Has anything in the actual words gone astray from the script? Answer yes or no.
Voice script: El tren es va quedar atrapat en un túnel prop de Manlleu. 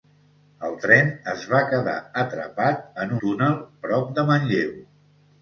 yes